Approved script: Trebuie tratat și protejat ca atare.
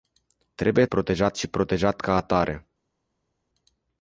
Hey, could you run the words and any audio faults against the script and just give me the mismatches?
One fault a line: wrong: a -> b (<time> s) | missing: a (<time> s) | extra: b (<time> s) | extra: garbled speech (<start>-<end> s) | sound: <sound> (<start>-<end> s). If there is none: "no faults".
wrong: tratat -> protejat (0.8 s)